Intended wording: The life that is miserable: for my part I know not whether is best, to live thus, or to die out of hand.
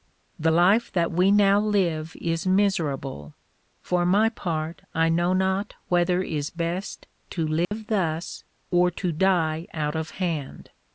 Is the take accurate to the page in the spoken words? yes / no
no